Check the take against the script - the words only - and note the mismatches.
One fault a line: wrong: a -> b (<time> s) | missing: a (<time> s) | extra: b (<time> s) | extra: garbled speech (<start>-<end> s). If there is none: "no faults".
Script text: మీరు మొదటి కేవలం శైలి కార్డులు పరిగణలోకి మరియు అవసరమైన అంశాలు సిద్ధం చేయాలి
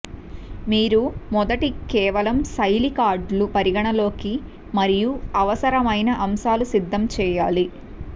no faults